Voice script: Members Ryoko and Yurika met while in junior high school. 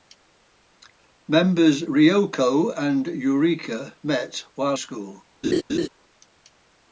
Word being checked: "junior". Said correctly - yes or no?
no